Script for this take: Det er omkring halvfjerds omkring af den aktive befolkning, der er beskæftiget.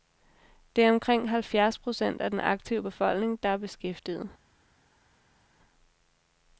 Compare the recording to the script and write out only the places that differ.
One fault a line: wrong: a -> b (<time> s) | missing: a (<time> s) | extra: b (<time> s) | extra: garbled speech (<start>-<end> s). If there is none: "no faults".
wrong: omkring -> procent (1.8 s)